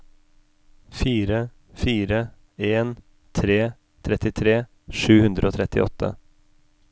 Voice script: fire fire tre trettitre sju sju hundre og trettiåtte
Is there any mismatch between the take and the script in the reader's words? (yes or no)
yes